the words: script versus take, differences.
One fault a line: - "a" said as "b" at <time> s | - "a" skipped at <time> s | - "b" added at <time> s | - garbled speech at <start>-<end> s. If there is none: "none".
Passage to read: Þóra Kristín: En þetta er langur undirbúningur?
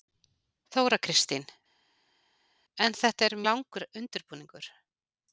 none